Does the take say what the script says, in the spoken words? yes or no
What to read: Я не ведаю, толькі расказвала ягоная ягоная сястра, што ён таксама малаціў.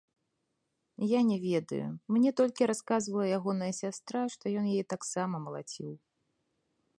no